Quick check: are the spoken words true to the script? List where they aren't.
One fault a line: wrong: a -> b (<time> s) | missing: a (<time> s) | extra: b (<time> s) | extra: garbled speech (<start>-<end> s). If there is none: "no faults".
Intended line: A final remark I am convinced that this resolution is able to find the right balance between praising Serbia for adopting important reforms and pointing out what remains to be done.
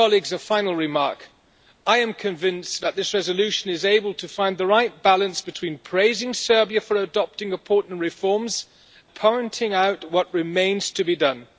missing: and (8.7 s)